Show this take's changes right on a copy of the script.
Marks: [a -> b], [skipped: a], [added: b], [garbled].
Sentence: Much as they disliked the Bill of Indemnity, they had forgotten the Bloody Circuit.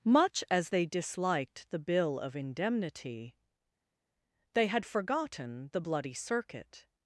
Much as they disliked the Bill of Indemnity, they had forgotten the Bloody Circuit.